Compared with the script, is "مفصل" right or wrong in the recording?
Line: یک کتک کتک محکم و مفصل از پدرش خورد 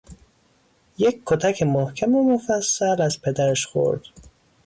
right